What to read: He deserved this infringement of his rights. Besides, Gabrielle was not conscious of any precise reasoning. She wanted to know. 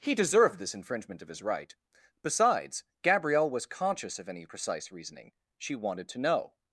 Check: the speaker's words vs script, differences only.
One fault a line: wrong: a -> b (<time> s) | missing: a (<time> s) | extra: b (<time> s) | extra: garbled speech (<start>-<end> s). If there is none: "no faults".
wrong: rights -> right (1.4 s)
missing: not (3.7 s)